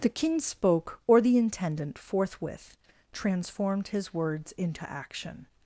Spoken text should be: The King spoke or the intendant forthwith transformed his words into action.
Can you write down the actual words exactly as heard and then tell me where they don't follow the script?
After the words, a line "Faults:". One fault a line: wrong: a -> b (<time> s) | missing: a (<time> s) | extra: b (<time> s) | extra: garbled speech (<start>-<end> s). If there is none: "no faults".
The King spoke or the intendant forthwith transformed his words into action.
Faults:
no faults